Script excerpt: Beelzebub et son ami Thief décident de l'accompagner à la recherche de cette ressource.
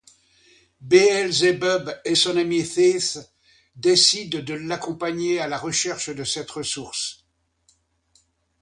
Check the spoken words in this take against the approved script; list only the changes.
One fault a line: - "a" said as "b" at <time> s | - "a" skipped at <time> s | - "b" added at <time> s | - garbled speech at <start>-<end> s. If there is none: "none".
none